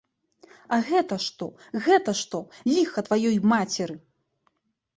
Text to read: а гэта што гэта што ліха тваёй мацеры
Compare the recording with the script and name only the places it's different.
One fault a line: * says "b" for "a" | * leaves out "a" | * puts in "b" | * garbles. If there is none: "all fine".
all fine